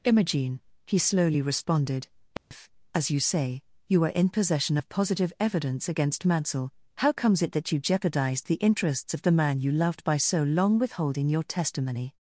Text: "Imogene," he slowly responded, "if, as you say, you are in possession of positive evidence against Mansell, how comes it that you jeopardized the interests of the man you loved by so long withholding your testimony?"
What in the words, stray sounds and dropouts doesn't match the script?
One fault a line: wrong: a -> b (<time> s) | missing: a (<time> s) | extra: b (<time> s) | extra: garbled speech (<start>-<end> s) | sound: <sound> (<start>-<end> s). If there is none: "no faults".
sound: dropout (2.4-2.5 s)